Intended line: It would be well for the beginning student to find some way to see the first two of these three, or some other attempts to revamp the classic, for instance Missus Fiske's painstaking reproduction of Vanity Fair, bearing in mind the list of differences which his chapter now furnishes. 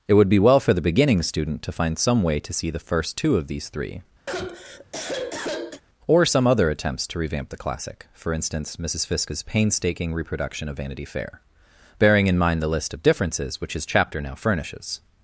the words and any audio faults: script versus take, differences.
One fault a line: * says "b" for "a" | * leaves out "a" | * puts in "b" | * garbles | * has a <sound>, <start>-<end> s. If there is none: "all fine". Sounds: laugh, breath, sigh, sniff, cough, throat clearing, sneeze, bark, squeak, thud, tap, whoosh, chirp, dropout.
* has a sigh, 4.3-5.8 s